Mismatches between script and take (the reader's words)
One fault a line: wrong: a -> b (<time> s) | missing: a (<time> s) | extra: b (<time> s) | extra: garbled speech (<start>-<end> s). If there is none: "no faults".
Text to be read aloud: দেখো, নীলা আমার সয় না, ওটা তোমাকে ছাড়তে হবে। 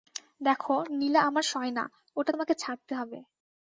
no faults